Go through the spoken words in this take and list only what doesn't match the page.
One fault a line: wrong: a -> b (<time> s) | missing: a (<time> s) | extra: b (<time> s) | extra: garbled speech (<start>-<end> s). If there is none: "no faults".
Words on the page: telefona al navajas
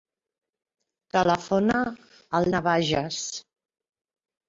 no faults